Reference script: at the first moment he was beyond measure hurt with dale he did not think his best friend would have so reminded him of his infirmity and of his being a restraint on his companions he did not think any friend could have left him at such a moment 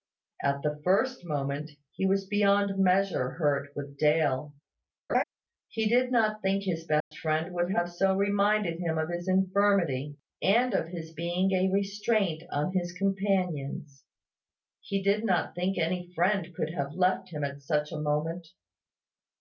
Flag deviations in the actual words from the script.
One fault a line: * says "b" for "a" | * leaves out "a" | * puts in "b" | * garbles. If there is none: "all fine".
all fine